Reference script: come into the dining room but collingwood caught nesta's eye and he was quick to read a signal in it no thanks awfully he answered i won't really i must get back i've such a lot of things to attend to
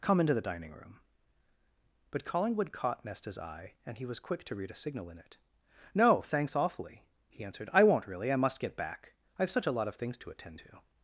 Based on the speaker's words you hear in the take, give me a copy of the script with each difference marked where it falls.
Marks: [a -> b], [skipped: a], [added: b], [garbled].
come into the dining room but collingwood caught nesta's eye and he was quick to read a signal in it no thanks awfully he answered i won't really i must get back i've such a lot of things to attend to